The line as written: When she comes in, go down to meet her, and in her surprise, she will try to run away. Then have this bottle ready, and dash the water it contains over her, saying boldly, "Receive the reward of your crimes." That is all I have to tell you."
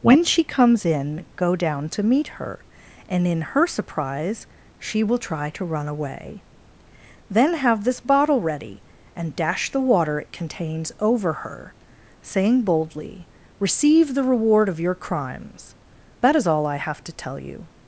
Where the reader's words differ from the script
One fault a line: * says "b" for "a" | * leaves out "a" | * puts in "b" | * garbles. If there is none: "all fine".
all fine